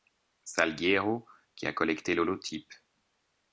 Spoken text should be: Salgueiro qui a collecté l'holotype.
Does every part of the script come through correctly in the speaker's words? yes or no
yes